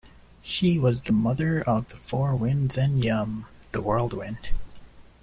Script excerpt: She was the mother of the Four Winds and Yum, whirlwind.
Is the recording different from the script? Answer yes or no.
yes